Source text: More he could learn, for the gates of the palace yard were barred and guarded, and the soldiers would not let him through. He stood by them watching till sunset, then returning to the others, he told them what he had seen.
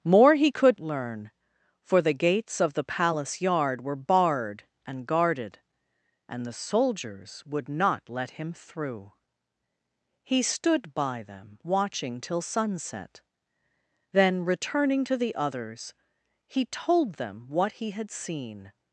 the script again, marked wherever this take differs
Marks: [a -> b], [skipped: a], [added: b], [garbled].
More he could learn, for the gates of the palace yard were barred and guarded, and the soldiers would not let him through. He stood by them watching till sunset, then returning to the others, he told them what he had seen.